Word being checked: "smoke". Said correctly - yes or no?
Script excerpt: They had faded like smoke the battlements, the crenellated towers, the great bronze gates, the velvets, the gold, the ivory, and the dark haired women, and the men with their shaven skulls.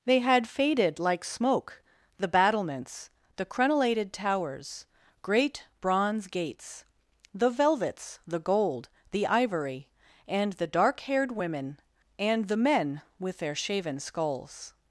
yes